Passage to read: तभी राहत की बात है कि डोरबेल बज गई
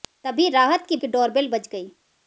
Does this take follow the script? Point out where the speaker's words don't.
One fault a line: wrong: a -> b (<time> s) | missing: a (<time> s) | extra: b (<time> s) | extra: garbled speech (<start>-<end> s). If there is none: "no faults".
missing: बात है (0.9 s)